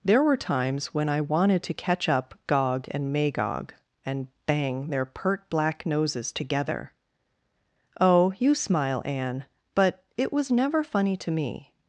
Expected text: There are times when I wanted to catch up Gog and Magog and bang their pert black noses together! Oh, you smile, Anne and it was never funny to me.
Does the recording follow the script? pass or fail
fail